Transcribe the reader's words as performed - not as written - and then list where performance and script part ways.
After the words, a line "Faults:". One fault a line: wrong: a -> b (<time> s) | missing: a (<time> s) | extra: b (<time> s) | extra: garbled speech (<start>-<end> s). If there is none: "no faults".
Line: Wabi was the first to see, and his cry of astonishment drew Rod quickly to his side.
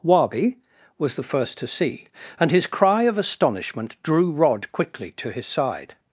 Wabi was the first to see, and his cry of astonishment drew Rod quickly to his side.
Faults:
no faults